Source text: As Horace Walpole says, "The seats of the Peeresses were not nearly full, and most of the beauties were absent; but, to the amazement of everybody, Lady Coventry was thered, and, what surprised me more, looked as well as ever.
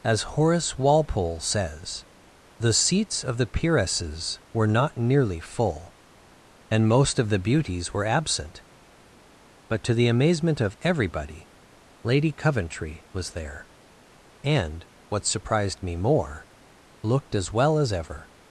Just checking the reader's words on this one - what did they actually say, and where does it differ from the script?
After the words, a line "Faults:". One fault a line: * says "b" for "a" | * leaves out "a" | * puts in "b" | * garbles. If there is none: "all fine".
As Horace Walpole says, "The seats of the Peeresses were not nearly full, and most of the beauties were absent; but, to the amazement of everybody, Lady Coventry was there, and, what surprised me more, looked as well as ever.
Faults:
* says "there" for "thered"